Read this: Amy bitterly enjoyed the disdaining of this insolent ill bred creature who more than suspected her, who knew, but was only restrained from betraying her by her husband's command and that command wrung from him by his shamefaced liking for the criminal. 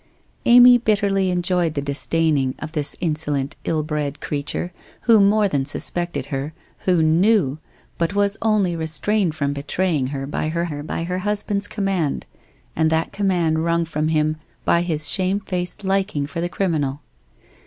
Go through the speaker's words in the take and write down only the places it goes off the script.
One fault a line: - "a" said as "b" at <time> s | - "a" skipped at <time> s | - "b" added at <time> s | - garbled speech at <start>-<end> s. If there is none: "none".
- "her by her" added at 10.6 s